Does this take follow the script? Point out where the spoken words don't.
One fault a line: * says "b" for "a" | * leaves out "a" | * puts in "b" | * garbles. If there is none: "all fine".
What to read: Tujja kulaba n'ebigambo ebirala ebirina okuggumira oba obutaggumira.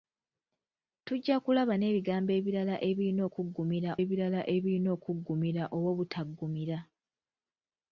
* puts in "ebirala ebirina okuggumira"